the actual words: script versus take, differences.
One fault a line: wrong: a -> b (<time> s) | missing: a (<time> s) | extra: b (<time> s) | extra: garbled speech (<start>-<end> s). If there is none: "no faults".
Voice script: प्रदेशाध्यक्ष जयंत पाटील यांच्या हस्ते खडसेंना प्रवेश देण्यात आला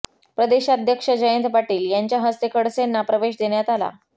no faults